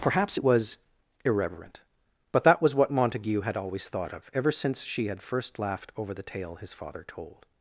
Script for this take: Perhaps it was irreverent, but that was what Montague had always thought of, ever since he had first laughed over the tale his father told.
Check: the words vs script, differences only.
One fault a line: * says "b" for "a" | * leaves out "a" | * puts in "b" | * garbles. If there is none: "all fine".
* says "she" for "he"